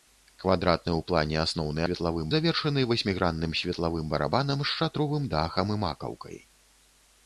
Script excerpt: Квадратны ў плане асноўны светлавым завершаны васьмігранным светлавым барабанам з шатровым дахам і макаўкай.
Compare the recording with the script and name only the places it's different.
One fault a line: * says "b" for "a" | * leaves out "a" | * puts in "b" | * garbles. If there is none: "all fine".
all fine